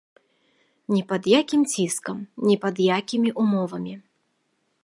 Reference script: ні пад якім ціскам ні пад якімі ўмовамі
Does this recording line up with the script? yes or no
yes